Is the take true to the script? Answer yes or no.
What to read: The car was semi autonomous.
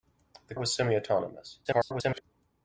no